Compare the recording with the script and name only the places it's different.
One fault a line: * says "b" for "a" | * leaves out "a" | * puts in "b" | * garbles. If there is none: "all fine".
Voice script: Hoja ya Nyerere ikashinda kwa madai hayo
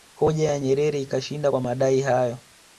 all fine